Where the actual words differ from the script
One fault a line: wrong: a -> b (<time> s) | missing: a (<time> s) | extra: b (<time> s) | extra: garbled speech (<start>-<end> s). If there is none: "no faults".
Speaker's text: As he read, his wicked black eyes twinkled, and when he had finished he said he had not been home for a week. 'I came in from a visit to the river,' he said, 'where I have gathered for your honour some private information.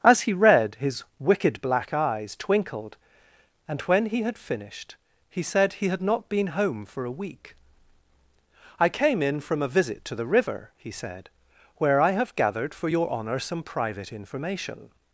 no faults